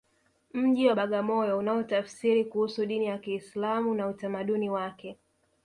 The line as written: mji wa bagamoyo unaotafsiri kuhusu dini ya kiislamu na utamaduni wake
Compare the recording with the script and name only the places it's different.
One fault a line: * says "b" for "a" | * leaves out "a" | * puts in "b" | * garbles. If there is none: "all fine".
all fine